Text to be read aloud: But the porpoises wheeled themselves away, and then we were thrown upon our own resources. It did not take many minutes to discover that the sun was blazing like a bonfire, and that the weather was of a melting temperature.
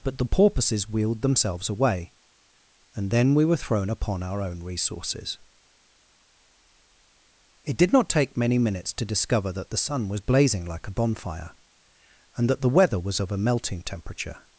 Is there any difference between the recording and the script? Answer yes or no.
no